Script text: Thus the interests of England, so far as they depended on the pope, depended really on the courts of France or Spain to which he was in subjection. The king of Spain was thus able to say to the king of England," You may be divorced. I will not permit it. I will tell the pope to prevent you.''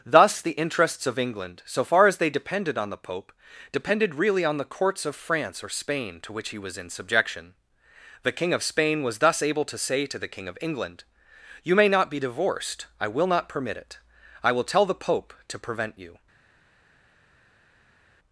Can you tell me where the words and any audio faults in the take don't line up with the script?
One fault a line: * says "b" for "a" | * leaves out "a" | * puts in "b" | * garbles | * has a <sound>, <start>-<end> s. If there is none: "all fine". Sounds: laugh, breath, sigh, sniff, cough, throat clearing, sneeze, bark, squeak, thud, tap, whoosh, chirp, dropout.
* puts in "not"